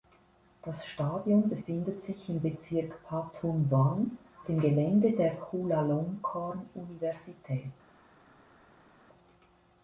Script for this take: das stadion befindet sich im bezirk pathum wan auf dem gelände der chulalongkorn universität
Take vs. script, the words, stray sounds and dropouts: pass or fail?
fail